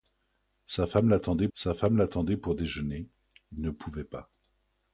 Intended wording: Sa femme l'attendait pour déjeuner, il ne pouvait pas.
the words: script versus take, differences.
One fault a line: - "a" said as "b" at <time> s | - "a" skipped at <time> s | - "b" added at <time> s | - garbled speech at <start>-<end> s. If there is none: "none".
- "sa femme l'attendait" added at 1.5 s